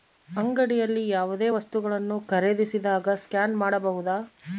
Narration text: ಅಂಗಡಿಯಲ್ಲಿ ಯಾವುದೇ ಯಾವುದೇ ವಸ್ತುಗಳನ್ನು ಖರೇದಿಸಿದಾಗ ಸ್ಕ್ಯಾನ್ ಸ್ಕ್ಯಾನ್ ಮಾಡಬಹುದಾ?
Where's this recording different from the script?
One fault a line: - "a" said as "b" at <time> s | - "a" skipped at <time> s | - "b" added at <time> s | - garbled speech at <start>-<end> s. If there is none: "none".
- "ಯಾವುದೇ" skipped at 1.5 s
- "ಸ್ಕ್ಯಾನ್" skipped at 3.6 s